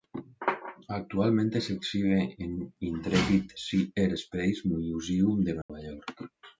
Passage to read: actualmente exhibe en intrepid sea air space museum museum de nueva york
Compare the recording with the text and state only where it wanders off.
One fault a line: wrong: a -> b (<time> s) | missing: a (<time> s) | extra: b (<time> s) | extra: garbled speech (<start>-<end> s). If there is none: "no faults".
extra: se (1.6 s)
missing: museum (5.4 s)